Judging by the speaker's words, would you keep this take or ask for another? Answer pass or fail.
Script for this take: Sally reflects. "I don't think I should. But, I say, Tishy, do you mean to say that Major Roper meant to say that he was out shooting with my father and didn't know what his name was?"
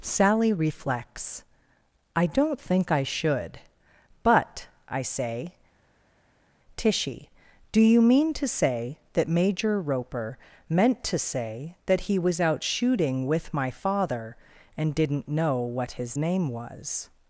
pass